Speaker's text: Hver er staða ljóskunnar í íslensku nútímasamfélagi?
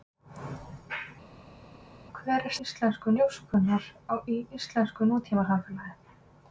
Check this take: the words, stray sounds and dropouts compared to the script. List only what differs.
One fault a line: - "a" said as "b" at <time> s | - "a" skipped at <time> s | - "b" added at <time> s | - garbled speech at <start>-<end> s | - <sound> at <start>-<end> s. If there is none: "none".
- "staða" said as "íslensku" at 2.7 s